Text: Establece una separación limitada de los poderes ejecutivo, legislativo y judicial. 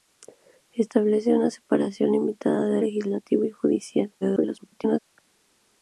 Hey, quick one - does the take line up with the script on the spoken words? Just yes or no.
no